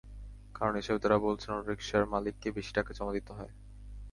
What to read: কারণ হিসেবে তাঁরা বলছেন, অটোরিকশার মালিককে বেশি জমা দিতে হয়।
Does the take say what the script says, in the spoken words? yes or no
no